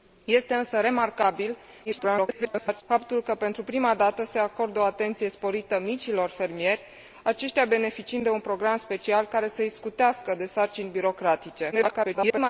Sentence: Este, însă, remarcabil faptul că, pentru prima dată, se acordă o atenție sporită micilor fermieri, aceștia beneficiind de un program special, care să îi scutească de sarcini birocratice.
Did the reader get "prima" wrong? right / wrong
right